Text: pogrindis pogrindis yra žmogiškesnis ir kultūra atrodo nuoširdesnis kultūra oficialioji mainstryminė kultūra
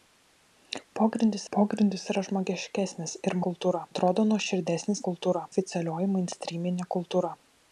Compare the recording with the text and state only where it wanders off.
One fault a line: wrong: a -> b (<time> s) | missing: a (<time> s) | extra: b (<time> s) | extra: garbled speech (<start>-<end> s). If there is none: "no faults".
no faults